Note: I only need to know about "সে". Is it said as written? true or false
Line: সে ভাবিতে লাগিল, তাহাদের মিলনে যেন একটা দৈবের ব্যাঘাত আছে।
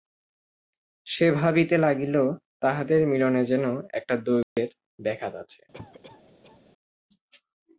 true